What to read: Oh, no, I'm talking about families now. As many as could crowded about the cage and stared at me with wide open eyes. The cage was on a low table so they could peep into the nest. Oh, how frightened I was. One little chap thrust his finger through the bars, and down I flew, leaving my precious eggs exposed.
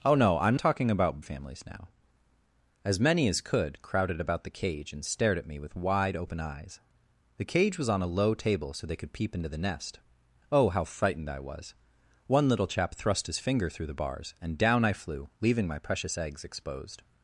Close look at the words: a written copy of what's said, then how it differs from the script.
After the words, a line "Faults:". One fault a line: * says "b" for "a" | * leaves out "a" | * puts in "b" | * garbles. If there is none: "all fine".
Oh, no, I'm talking about families now. As many as could crowded about the cage and stared at me with wide open eyes. The cage was on a low table so they could peep into the nest. Oh, how frightened I was. One little chap thrust his finger through the bars, and down I flew, leaving my precious eggs exposed.
Faults:
all fine